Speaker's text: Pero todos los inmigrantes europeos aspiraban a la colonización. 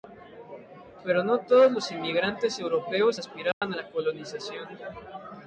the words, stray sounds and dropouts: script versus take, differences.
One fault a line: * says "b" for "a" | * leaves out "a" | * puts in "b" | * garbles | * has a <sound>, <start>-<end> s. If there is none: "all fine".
* puts in "no"
* has a dropout, 3.5-3.6 s